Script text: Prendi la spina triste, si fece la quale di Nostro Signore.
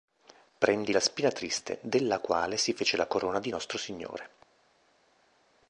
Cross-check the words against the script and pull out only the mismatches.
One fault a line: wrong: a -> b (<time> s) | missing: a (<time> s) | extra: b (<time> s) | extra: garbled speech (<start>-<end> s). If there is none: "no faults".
extra: della quale (1.8 s)
wrong: quale -> corona (3.0 s)